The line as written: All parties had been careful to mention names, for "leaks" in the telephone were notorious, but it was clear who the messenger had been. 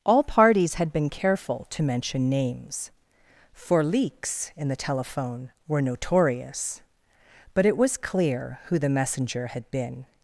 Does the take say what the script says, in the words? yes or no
yes